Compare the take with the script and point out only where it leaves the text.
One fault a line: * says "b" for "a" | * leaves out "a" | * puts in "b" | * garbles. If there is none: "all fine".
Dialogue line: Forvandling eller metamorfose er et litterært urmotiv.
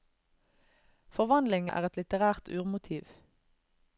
* leaves out "eller metamorfose"